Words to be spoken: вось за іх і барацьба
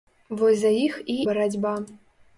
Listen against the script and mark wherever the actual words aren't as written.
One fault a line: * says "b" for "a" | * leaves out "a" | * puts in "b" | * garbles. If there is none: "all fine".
all fine